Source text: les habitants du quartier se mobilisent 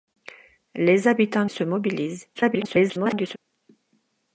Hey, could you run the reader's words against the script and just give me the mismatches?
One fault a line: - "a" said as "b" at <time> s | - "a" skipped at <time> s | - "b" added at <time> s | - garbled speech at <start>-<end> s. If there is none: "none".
- "du quartier" skipped at 1.4 s
- garbled speech at 2.3-3.4 s